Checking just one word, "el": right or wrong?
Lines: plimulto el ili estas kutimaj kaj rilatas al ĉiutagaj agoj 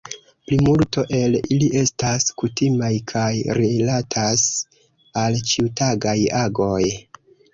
right